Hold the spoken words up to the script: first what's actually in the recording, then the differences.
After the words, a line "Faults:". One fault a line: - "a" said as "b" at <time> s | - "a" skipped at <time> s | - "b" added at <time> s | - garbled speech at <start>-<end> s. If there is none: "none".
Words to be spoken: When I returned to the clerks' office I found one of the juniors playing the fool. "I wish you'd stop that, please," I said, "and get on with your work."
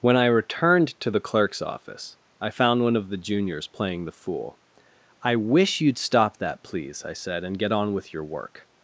When I returned to the clerks' office I found one of the juniors playing the fool. "I wish you'd stop that, please," I said, "and get on with your work."
Faults:
none